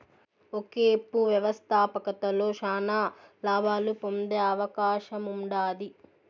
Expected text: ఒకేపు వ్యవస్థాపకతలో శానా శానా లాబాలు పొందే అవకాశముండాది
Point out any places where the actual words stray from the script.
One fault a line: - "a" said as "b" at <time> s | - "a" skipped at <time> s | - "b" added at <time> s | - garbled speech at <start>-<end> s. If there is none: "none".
- "శానా" skipped at 3.0 s